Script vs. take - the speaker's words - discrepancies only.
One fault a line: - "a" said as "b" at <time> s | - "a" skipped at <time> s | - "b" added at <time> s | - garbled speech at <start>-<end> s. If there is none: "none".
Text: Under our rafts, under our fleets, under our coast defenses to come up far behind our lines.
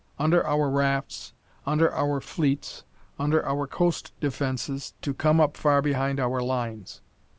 none